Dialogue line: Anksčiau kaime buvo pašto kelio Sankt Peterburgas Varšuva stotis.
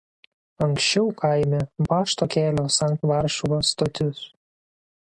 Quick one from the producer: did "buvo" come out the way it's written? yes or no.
no